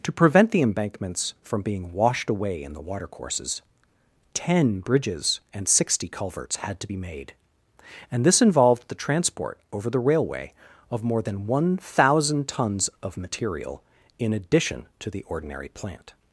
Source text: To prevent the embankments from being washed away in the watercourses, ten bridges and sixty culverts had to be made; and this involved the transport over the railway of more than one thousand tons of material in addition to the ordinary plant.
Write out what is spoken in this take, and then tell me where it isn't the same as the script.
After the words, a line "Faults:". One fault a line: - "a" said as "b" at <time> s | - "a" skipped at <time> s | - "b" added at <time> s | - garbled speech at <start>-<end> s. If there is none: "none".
To prevent the embankments from being washed away in the watercourses, ten bridges and sixty culverts had to be made; and this involved the transport over the railway of more than one thousand tons of material in addition to the ordinary plant.
Faults:
none